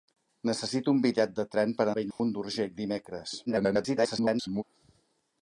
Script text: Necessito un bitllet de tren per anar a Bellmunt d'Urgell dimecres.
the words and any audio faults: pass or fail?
fail